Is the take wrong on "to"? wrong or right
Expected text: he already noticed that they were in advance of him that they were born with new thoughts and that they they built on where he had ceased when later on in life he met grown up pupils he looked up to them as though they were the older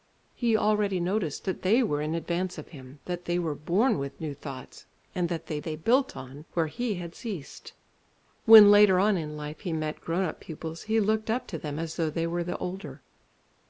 right